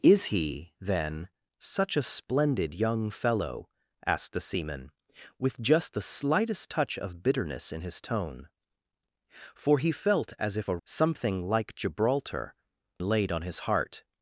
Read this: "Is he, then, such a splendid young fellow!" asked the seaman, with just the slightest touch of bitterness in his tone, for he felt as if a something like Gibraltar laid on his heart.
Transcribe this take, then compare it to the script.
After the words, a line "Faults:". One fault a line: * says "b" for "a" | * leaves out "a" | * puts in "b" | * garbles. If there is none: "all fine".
"Is he, then, such a splendid young fellow!" asked the seaman, with just the slightest touch of bitterness in his tone, for he felt as if a something like Gibraltar laid on his heart.
Faults:
all fine